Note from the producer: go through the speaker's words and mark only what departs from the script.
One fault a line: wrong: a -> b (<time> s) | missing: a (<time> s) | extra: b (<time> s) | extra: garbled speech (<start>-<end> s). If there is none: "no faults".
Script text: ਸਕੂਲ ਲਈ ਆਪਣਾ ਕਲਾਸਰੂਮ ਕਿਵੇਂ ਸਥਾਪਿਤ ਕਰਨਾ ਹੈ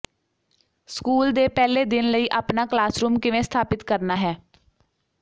extra: ਦੇ ਪਹਿਲੇ ਦਿਨ (1.3 s)